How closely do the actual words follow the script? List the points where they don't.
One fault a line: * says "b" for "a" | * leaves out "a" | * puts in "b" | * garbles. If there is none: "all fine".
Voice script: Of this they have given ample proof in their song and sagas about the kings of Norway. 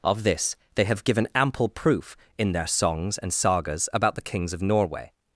* says "songs" for "song"